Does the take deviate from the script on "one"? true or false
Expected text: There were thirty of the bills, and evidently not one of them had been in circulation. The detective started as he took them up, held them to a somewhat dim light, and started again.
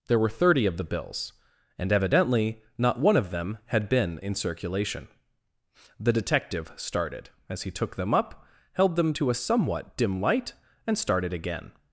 false